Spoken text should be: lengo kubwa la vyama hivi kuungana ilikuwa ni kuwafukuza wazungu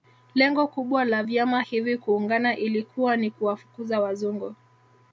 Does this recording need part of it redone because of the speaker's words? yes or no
no